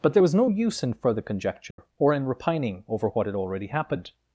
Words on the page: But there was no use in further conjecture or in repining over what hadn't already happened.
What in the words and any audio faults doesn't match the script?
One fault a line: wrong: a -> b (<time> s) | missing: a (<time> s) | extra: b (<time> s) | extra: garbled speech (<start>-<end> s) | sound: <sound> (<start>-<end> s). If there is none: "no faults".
sound: dropout (1.7-1.8 s)
wrong: hadn't -> had (3.2 s)